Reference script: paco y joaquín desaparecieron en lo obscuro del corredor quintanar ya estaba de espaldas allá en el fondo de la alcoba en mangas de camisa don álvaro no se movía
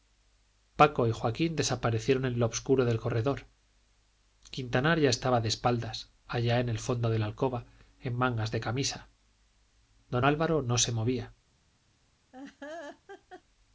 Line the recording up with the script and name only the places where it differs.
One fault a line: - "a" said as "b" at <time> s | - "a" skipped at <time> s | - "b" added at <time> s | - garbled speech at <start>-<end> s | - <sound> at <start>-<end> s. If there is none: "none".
- laugh at 12.3-13.4 s